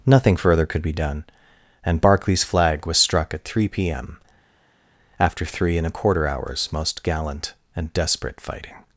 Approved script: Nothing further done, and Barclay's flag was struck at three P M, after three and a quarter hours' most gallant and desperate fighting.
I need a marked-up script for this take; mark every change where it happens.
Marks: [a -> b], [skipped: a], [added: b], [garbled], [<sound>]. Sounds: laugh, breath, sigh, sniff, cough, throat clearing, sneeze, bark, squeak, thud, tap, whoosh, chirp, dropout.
Nothing further [added: could be] done, and Barclay's flag was struck at three P M, after three and a quarter hours' most gallant and desperate fighting.